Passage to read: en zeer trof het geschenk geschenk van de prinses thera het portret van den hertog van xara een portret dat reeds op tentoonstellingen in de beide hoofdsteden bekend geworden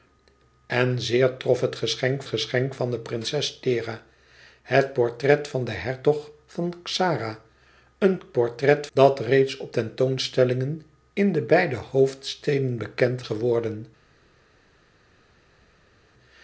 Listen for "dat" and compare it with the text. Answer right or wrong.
right